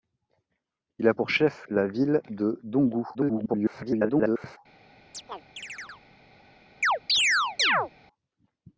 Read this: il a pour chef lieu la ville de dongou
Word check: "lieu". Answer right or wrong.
wrong